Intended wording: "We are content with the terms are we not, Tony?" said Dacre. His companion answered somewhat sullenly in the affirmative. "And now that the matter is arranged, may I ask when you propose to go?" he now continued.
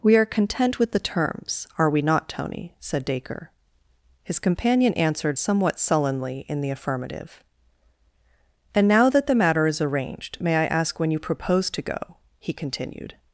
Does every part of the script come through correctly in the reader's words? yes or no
no